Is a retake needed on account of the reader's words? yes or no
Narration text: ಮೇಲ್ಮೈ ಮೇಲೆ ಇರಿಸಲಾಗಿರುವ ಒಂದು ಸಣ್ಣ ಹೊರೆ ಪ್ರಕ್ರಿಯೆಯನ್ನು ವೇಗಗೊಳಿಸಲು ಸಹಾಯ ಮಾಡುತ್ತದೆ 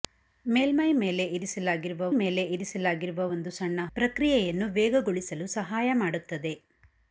yes